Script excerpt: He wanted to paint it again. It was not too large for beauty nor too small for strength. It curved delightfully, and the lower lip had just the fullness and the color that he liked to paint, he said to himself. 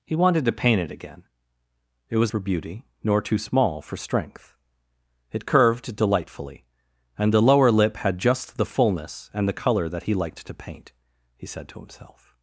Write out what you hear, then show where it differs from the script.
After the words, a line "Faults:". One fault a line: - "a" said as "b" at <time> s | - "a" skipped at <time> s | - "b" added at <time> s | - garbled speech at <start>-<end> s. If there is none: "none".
He wanted to paint it again. It was for beauty nor too small for strength. It curved delightfully, and the lower lip had just the fullness and the color that he liked to paint, he said to himself.
Faults:
- "not too large" skipped at 2.3 s